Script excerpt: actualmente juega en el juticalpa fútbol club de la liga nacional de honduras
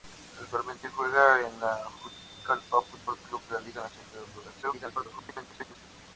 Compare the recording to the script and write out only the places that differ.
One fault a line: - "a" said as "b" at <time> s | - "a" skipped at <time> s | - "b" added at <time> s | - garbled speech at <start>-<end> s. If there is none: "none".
- garbled speech at 4.6-5.8 s